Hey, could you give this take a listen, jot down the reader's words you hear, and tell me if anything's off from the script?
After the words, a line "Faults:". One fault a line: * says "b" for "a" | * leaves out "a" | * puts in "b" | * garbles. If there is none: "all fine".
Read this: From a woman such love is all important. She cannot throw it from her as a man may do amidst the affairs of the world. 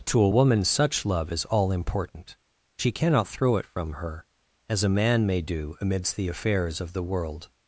To a woman such love is all important. She cannot throw it from her as a man may do amidst the affairs of the world.
Faults:
* says "To" for "From"